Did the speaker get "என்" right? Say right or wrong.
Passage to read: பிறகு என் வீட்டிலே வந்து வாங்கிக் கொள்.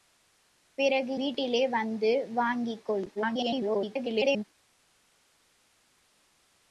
wrong